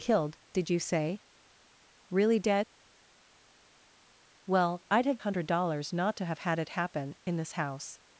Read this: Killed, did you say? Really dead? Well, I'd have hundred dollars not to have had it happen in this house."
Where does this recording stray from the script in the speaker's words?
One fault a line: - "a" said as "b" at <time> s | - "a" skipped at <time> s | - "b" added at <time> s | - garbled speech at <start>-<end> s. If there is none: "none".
none